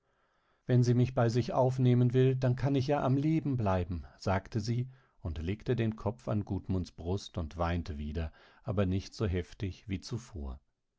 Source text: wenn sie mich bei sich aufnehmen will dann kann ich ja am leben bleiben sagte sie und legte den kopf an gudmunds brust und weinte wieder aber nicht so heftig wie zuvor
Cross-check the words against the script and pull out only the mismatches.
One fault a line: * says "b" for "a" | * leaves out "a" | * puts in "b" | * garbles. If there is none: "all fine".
all fine